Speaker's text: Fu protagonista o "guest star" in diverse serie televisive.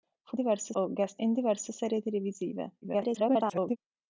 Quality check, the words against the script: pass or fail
fail